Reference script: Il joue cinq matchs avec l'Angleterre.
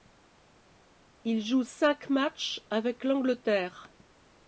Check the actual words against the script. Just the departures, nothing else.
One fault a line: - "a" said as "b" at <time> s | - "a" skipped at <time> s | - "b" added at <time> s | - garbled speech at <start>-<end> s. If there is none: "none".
none